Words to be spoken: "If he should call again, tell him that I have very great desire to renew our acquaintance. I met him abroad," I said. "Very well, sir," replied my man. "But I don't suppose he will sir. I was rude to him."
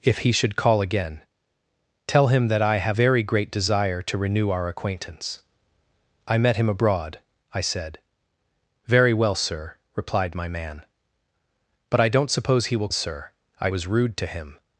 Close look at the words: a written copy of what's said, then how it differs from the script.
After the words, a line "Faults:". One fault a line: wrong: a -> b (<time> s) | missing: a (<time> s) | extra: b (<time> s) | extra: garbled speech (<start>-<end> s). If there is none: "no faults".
"If he should call again, tell him that I have very great desire to renew our acquaintance. I met him abroad," I said. "Very well, sir," replied my man. "But I don't suppose he will sir. I was rude to him."
Faults:
no faults